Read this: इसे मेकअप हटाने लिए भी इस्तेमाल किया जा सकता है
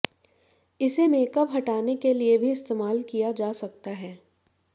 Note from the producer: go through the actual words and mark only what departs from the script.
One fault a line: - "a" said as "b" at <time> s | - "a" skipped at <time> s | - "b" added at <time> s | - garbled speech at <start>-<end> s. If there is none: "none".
- "के" added at 2.0 s